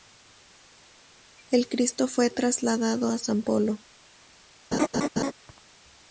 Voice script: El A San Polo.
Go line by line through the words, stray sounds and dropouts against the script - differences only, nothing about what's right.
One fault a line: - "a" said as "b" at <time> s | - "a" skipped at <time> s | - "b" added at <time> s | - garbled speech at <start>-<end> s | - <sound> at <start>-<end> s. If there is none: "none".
- "Cristo fue trasladado" added at 1.7 s
- laugh at 4.7-5.3 s